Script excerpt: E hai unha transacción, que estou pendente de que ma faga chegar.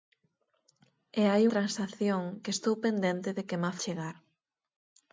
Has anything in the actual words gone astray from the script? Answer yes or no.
yes